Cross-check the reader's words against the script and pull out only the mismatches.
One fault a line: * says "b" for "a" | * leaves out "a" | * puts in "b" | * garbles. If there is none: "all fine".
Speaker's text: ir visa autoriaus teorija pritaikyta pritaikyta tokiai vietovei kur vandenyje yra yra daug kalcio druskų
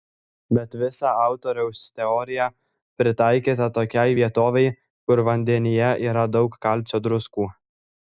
* says "bet" for "ir"
* leaves out "pritaikyta"
* leaves out "yra"